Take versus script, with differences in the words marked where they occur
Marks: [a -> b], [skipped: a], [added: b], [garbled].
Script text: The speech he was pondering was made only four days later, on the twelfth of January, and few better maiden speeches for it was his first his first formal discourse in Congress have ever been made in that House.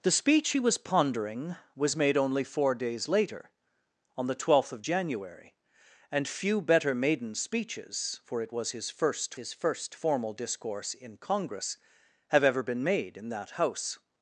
The speech he was pondering was made only four days later, on the twelfth of January, and few better maiden speeches for it was his first his first formal discourse in Congress have ever been made in that House.